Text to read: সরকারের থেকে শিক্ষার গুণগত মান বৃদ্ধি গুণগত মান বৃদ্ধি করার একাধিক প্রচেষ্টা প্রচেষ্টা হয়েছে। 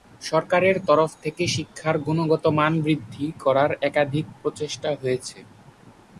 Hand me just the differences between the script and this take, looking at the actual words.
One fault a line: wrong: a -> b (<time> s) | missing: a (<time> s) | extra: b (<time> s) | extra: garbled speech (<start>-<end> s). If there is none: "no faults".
extra: তরফ (0.9 s)
missing: গুণগত মান বৃদ্ধি (3.3 s)
missing: প্রচেষ্টা (4.9 s)